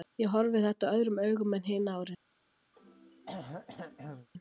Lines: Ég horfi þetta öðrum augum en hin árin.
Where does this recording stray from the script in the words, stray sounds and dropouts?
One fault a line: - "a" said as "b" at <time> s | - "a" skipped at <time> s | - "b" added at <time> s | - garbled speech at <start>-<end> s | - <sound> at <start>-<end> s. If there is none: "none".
- throat clearing at 2.7-4.3 s